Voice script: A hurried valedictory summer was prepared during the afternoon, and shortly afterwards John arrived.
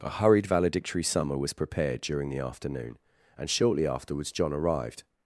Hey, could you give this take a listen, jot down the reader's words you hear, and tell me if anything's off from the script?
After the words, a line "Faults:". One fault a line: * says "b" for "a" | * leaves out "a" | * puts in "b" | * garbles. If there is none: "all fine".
A hurried valedictory summer was prepared during the afternoon, and shortly afterwards John arrived.
Faults:
all fine